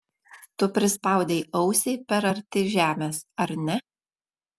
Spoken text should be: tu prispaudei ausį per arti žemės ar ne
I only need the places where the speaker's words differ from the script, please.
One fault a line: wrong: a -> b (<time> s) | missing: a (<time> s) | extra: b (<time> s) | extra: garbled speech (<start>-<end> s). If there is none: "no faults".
no faults